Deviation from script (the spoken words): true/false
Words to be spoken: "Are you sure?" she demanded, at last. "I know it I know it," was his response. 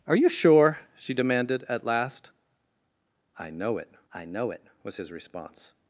false